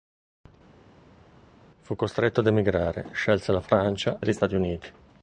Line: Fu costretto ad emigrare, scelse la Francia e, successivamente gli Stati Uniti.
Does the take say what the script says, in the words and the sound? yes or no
no